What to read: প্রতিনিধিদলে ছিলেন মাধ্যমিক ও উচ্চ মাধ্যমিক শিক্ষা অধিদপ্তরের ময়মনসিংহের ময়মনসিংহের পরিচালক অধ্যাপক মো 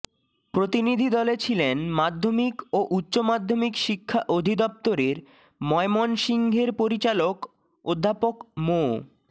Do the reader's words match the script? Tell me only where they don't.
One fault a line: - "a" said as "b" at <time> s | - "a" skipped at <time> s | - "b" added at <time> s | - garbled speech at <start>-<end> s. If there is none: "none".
- "ময়মনসিংহের" skipped at 6.7 s